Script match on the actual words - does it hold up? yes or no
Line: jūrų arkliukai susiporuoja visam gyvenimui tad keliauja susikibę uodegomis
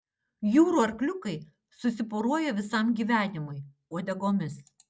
no